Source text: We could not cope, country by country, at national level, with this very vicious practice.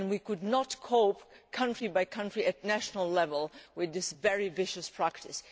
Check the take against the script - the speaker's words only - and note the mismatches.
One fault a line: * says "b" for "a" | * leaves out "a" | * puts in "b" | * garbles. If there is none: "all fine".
all fine